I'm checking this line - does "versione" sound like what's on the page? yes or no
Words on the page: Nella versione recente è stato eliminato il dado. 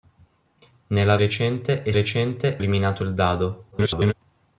no